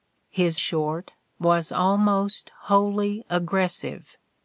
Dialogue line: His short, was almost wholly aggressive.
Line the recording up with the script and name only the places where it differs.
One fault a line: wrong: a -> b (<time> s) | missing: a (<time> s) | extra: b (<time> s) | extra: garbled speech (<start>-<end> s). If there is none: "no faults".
no faults